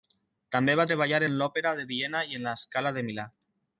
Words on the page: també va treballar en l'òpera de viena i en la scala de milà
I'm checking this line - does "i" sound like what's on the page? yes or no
yes